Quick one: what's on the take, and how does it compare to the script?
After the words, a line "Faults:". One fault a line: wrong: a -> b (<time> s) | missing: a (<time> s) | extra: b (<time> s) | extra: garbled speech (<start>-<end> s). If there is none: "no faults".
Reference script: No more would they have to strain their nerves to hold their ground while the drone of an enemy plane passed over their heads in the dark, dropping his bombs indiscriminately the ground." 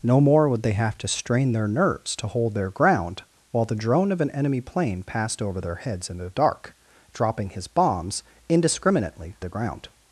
No more would they have to strain their nerves to hold their ground while the drone of an enemy plane passed over their heads in the dark, dropping his bombs indiscriminately the ground."
Faults:
no faults